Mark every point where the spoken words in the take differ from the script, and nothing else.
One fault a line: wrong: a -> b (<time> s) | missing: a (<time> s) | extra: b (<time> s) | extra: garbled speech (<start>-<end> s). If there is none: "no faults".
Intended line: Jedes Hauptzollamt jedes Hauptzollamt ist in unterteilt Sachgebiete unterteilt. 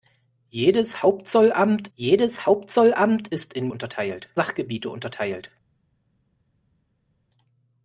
no faults